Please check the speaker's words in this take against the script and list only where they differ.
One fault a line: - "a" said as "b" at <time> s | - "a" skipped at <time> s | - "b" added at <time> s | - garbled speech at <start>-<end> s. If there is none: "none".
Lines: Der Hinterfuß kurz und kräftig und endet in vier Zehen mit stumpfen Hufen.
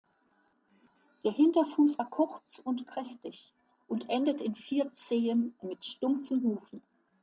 - "war" added at 2.0 s